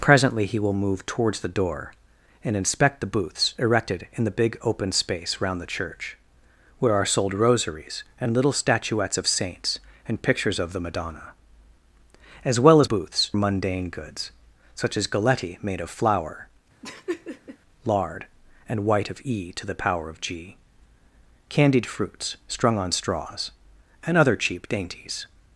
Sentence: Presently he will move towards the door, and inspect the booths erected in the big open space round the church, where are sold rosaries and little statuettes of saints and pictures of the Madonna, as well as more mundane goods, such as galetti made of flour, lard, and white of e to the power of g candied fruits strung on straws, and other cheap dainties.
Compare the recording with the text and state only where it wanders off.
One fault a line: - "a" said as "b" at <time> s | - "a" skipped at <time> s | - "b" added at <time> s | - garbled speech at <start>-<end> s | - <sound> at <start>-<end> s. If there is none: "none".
- "more" said as "booths" at 12.8 s
- laugh at 16.8-17.6 s